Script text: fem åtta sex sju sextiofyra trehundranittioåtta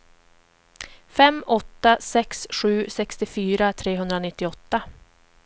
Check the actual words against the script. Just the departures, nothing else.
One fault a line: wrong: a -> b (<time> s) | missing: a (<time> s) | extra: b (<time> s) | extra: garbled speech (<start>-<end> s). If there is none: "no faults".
no faults